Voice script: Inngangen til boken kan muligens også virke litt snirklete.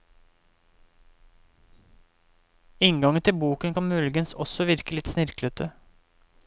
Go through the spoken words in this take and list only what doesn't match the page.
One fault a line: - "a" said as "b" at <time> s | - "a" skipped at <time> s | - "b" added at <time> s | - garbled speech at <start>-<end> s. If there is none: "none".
none